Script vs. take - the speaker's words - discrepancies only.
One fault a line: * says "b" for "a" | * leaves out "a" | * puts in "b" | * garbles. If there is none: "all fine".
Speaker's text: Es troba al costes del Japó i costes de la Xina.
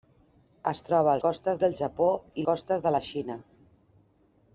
all fine